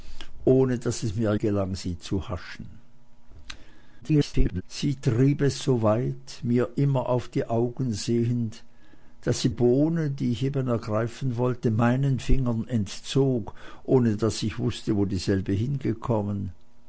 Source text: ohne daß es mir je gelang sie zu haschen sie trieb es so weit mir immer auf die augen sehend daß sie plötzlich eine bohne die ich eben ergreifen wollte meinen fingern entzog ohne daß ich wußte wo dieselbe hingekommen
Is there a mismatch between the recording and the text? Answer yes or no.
yes